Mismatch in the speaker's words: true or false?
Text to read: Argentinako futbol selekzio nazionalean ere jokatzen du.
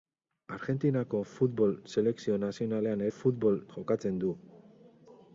true